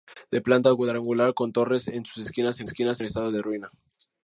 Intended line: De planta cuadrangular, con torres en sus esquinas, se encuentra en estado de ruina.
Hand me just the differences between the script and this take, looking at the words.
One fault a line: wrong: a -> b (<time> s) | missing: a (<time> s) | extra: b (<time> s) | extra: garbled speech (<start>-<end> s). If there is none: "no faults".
wrong: encuentra -> esquinas (2.7 s)